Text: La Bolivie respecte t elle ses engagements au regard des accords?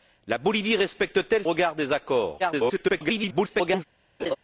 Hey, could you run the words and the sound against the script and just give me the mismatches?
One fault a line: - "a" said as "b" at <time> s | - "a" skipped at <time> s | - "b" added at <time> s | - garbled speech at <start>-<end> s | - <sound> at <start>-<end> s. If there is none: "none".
- "ses engagements" skipped at 1.4 s
- garbled speech at 2.4-3.8 s
- laugh at 4.2-4.4 s